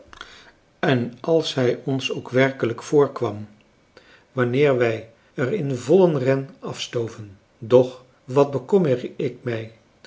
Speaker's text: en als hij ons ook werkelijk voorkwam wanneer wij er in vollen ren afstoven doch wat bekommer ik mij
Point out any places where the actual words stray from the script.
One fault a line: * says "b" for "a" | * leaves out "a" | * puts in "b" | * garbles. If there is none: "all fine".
all fine